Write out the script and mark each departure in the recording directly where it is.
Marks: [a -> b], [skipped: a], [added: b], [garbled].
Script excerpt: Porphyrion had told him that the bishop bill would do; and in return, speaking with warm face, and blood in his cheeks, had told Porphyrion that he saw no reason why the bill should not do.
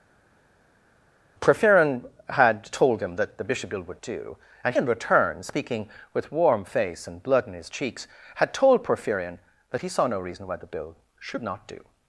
Porphyrion had told him that the bishop bill would do; and in return, speaking with warm face, and blood in his cheeks, had told Porphyrion that he saw no reason why the bill should not do.